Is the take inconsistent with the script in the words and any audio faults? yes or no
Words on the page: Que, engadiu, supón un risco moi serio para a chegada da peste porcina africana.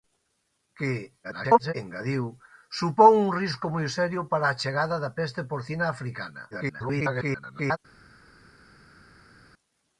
yes